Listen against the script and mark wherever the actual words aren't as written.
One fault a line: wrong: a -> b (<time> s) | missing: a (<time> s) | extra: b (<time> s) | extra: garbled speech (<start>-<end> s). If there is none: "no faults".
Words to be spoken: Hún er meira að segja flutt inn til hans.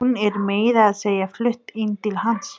no faults